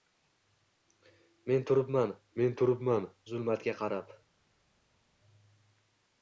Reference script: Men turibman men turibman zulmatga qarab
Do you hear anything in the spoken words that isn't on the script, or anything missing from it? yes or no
no